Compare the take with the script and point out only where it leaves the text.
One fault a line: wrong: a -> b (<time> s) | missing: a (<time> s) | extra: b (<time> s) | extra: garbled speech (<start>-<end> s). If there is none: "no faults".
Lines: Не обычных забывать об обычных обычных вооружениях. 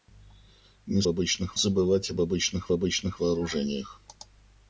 no faults